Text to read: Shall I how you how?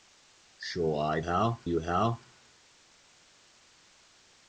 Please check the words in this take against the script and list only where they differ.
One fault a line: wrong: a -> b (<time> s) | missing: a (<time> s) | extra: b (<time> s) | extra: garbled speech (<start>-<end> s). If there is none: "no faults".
no faults